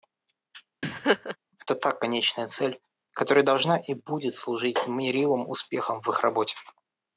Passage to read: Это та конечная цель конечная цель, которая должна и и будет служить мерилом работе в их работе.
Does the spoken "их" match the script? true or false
true